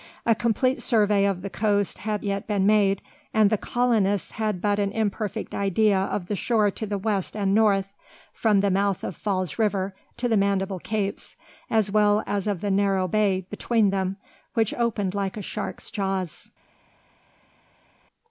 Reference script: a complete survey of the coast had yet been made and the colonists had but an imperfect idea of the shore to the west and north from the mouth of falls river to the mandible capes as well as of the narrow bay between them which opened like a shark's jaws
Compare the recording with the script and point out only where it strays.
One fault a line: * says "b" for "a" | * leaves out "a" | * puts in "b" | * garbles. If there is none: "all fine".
all fine